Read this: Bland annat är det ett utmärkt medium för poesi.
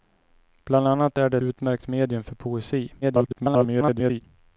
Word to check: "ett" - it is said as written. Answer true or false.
false